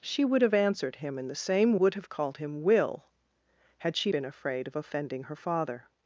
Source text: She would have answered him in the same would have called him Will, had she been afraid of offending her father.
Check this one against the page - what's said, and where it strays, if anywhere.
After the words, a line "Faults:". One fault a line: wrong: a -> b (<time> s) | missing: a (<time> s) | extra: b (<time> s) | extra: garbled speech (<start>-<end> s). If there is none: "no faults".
She would have answered him in the same would have called him Will, had she been afraid of offending her father.
Faults:
no faults